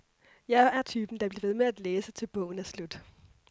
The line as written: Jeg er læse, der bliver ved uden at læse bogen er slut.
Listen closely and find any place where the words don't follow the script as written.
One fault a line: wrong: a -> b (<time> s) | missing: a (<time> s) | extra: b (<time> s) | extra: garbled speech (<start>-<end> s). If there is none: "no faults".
wrong: læse -> typen (0.8 s)
wrong: uden -> med (1.5 s)
extra: til (2.1 s)